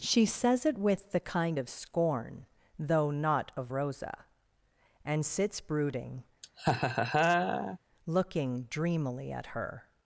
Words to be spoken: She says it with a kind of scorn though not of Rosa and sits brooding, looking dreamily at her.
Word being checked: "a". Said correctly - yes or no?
no